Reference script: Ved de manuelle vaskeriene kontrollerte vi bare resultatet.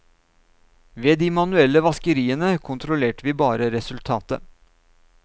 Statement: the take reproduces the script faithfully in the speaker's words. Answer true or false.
true